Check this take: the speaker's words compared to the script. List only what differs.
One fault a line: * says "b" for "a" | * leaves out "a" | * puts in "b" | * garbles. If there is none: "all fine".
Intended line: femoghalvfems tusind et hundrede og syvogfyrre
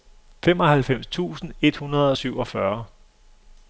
all fine